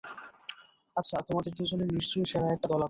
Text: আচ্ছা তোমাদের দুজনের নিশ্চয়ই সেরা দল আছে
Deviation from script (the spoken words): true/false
true